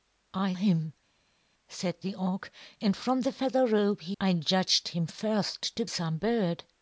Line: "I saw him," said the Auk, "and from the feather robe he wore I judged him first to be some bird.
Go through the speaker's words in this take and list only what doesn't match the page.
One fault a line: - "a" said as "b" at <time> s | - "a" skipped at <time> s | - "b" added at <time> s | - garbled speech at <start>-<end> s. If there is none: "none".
- "saw" skipped at 0.6 s
- "wore" skipped at 4.2 s
- "be" skipped at 5.8 s